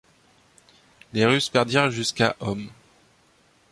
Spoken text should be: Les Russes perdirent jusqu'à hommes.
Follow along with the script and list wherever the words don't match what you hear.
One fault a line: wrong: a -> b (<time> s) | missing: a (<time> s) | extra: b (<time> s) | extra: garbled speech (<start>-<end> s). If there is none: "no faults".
no faults